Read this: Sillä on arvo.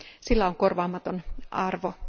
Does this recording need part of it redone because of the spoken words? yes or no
yes